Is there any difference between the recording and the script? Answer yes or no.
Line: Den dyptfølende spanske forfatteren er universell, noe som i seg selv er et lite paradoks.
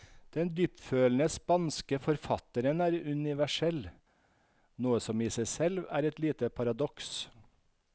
no